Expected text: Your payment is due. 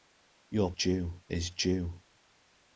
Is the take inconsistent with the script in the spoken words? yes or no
yes